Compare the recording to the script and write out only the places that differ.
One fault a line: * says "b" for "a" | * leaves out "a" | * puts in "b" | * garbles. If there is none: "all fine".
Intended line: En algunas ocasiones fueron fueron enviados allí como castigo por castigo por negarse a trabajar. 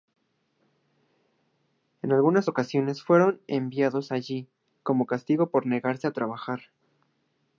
* leaves out "fueron"
* leaves out "castigo por"